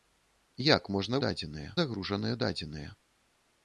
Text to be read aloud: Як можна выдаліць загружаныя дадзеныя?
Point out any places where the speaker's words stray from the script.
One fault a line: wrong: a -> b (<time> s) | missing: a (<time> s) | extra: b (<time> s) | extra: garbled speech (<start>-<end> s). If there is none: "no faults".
wrong: выдаліць -> дадзеныя (1.3 s)